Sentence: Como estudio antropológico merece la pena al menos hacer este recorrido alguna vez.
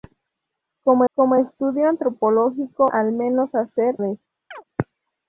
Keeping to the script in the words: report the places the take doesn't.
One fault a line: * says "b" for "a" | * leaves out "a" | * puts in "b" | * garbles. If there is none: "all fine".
* puts in "como"
* leaves out "merece la pena"
* leaves out "este recorrido alguna"